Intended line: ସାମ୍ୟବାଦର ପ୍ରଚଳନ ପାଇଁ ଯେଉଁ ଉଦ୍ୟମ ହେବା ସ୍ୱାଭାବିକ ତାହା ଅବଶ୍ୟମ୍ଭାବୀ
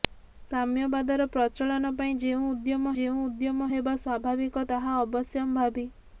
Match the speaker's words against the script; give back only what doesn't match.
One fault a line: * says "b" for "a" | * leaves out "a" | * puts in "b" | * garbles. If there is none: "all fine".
* puts in "ଯେଉଁ ଉଦ୍ୟମ"